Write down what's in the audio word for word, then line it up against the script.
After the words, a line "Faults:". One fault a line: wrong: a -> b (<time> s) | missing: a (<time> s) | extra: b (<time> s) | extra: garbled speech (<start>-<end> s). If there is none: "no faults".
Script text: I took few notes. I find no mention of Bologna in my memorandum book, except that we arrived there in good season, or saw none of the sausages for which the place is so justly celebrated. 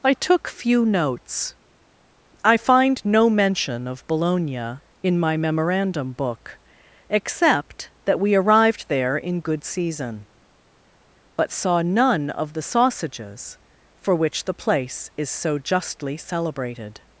I took few notes. I find no mention of Bologna in my memorandum book, except that we arrived there in good season, but saw none of the sausages for which the place is so justly celebrated.
Faults:
wrong: or -> but (11.4 s)